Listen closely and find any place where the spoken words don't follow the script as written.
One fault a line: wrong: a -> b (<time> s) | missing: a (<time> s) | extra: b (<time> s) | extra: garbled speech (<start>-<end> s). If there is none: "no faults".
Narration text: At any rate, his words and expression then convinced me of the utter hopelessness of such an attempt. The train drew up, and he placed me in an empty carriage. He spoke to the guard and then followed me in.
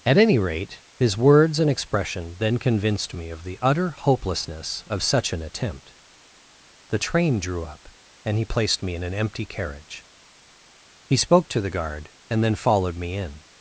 no faults